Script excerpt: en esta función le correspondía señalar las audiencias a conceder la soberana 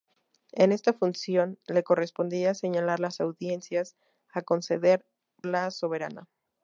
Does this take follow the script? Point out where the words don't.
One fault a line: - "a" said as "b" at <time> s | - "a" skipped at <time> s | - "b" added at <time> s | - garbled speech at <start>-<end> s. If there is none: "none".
none